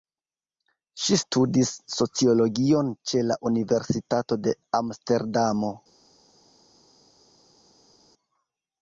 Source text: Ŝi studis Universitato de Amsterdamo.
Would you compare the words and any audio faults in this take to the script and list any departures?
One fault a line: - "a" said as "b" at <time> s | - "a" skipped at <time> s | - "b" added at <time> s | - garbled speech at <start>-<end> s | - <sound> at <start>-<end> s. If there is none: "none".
- "sociologion ĉe la" added at 2.0 s